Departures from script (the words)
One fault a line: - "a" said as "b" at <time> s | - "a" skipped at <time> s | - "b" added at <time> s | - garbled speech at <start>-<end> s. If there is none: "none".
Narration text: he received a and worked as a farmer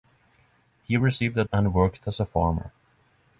none